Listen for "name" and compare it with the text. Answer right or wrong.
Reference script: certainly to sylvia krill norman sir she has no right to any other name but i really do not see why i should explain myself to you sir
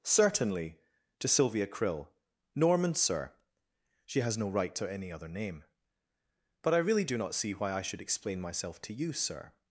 right